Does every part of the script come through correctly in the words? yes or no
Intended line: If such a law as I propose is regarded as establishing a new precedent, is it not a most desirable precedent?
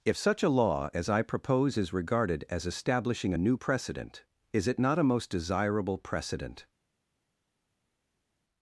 yes